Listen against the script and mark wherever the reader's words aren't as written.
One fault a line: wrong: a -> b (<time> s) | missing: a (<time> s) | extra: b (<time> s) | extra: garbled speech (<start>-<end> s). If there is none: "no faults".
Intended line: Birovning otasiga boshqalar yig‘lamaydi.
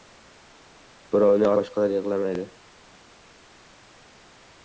missing: otasiga (1.5 s)